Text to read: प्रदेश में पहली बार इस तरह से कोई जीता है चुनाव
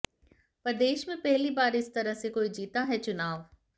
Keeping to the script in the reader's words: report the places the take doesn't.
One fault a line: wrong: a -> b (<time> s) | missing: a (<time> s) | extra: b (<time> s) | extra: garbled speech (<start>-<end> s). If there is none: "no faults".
no faults